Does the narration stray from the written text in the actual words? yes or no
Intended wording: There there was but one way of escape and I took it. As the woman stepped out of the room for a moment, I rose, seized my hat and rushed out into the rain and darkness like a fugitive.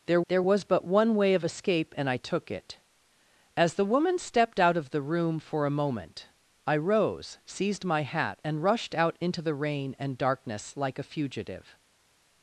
no